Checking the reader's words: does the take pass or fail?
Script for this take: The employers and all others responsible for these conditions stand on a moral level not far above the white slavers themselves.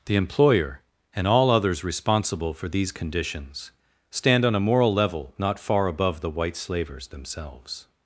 fail